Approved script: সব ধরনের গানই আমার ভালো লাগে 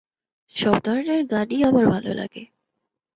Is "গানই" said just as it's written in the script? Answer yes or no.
yes